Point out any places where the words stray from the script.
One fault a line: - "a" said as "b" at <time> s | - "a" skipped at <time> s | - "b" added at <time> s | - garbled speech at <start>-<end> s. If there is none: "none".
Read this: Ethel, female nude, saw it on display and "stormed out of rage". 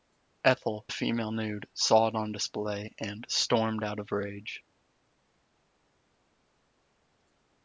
none